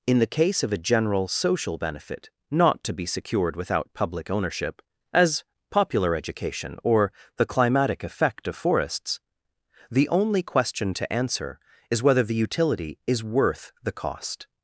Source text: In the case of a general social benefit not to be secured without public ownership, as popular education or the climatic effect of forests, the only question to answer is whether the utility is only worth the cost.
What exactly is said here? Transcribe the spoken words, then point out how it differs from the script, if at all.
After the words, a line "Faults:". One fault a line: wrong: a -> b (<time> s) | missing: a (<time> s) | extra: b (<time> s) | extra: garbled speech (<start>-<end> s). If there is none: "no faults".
In the case of a general social benefit not to be secured without public ownership, as popular education or the climatic effect of forests, the only question to answer is whether the utility is worth the cost.
Faults:
missing: only (13.2 s)